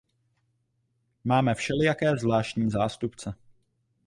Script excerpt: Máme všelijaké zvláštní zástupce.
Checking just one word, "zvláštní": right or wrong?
right